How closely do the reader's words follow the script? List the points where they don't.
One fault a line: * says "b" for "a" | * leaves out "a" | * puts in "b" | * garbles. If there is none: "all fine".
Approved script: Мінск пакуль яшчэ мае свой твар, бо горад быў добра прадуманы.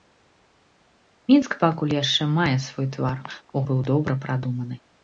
* leaves out "горад"